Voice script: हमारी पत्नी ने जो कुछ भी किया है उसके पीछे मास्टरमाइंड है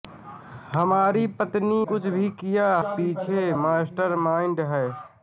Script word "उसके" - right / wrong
wrong